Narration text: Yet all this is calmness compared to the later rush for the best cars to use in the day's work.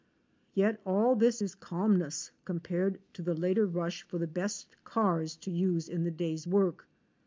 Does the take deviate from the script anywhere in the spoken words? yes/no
no